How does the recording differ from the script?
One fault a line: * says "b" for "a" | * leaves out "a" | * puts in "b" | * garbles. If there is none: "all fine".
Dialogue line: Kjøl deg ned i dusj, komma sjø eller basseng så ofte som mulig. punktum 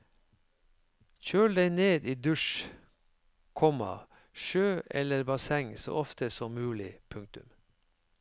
all fine